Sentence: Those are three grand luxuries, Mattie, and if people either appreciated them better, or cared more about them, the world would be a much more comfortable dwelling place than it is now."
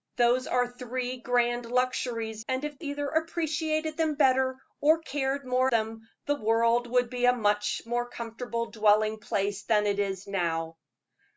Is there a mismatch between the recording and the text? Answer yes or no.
yes